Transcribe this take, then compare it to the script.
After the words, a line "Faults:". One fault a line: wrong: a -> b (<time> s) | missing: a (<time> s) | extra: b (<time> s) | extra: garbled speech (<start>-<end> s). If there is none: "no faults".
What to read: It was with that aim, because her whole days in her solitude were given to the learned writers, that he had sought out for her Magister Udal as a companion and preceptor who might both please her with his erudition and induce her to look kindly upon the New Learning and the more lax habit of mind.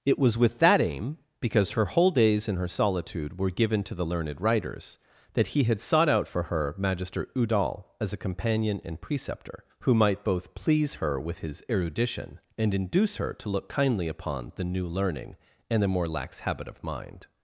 It was with that aim, because her whole days in her solitude were given to the learned writers, that he had sought out for her Magister Udal as a companion and preceptor who might both please her with his erudition and induce her to look kindly upon the New Learning and the more lax habit of mind.
Faults:
no faults